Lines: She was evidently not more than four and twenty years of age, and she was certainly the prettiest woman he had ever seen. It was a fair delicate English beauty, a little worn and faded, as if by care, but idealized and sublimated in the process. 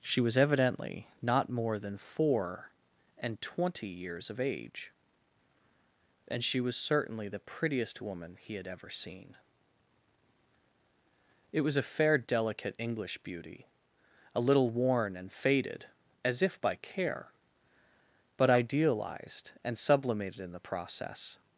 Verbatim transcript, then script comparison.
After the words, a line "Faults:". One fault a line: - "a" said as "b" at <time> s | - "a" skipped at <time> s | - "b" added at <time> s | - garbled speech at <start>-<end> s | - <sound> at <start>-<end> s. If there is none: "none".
She was evidently not more than four and twenty years of age, and she was certainly the prettiest woman he had ever seen. It was a fair delicate English beauty, a little worn and faded, as if by care, but idealized and sublimated in the process.
Faults:
none